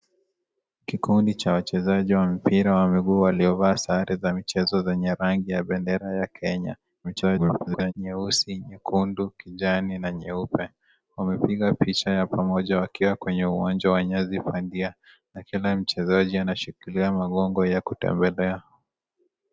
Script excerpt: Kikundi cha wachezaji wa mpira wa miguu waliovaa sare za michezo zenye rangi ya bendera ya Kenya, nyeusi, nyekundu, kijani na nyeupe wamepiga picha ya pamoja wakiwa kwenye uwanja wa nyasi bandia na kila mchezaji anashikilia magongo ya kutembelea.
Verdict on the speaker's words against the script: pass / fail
fail